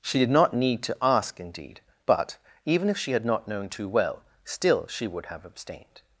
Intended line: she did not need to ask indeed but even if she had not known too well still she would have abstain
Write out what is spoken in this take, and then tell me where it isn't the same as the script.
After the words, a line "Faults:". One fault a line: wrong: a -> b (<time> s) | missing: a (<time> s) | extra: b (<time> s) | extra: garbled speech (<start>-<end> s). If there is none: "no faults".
she did not need to ask indeed but even if she had not known too well still she would have abstained
Faults:
wrong: abstain -> abstained (5.5 s)